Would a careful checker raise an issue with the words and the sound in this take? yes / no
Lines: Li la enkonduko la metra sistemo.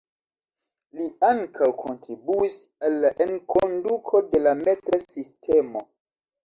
yes